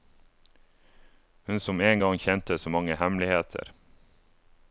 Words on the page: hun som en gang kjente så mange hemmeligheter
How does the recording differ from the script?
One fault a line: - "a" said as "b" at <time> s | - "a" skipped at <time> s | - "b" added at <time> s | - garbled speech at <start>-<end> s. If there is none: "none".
none